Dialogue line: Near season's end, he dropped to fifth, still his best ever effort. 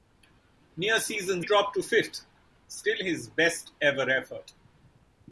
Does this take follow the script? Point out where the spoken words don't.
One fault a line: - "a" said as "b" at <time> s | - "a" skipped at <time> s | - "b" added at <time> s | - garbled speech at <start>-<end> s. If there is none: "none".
- "end he" skipped at 1.4 s